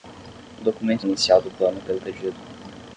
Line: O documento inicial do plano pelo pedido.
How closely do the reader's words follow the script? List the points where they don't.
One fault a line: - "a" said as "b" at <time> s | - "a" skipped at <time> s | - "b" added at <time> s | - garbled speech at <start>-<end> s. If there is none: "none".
none